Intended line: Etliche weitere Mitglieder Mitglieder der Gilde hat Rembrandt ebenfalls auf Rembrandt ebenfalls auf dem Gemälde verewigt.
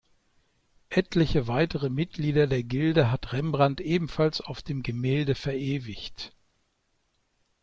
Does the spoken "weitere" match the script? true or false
true